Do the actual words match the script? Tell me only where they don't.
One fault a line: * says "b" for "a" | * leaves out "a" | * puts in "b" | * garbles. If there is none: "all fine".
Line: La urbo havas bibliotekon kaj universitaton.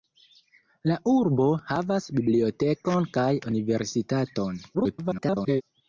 * garbles